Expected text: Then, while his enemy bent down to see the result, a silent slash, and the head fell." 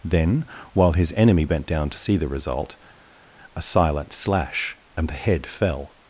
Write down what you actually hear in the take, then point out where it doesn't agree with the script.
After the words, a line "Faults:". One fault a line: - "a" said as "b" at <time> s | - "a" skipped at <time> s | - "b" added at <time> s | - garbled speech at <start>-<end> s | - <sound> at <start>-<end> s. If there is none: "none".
Then, while his enemy bent down to see the result, a silent slash, and the head fell."
Faults:
none